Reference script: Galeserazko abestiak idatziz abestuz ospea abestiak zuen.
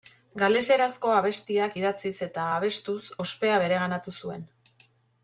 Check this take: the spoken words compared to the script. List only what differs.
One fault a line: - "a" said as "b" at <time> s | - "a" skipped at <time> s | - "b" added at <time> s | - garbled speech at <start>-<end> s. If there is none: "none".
- "eta" added at 2.3 s
- "abestiak" said as "bereganatu" at 3.7 s